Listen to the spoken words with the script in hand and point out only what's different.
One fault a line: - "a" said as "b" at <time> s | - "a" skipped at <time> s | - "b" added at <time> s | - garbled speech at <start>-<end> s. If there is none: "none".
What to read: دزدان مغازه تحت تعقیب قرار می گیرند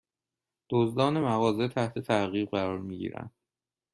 none